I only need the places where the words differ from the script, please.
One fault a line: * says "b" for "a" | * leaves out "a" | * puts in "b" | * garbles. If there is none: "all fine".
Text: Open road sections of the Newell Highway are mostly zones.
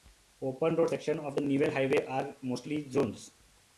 all fine